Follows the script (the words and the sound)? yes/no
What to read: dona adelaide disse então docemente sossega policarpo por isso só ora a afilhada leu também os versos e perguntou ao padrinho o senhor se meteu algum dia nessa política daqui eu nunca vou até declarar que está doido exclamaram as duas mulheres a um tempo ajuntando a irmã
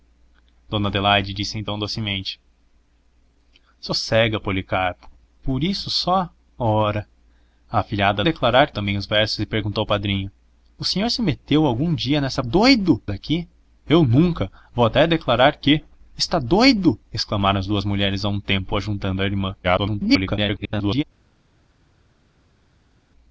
no